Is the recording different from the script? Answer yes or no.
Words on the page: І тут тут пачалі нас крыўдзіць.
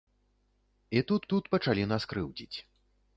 no